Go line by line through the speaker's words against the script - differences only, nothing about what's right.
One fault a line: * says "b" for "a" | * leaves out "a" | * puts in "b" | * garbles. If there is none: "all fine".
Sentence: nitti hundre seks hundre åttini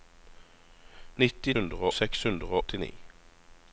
all fine